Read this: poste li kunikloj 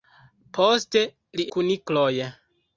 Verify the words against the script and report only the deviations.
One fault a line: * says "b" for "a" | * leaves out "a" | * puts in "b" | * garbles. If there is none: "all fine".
all fine